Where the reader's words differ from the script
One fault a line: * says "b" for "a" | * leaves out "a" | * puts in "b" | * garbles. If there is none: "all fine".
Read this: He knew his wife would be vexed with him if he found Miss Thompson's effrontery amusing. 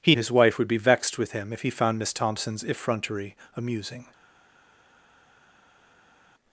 * leaves out "knew"